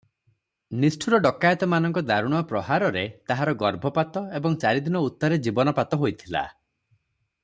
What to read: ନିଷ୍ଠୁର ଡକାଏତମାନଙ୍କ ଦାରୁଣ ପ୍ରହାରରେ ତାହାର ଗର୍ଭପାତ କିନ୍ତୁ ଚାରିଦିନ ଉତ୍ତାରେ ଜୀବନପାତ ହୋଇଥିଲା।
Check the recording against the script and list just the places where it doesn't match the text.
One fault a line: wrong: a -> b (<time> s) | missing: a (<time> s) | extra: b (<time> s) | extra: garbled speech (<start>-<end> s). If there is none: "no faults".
wrong: କିନ୍ତୁ -> ଏବଂ (4.4 s)